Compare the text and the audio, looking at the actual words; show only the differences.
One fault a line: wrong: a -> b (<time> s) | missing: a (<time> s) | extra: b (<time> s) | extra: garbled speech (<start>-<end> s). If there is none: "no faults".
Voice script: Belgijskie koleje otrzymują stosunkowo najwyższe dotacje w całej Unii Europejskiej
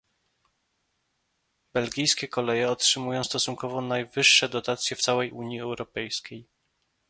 no faults